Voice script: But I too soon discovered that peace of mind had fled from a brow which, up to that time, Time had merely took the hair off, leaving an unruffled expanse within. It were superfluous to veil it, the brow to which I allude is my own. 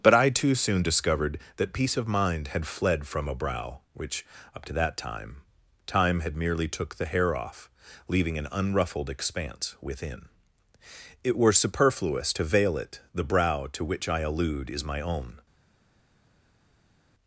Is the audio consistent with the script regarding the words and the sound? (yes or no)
yes